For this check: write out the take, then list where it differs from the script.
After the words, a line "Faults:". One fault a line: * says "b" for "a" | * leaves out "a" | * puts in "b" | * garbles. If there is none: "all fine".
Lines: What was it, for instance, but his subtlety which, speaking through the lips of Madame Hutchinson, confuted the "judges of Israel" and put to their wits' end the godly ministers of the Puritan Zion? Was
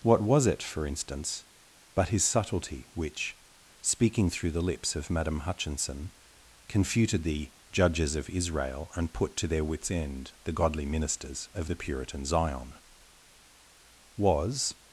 What was it, for instance, but his subtlety which, speaking through the lips of Madame Hutchinson, confuted the "judges of Israel" and put to their wits' end the godly ministers of the Puritan Zion? Was
Faults:
all fine